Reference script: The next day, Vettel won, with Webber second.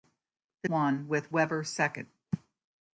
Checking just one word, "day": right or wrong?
wrong